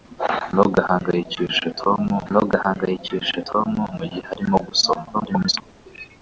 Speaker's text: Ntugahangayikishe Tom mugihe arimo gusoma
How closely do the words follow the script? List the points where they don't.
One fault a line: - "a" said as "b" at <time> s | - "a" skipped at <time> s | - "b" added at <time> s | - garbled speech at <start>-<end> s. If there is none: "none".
- "ntugahangayikishe Tom" added at 2.3 s
- garbled speech at 5.1-5.6 s